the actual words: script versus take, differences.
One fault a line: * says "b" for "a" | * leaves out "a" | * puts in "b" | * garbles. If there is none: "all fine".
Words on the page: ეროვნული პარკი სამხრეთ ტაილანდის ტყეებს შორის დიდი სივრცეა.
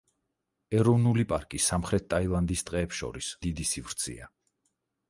all fine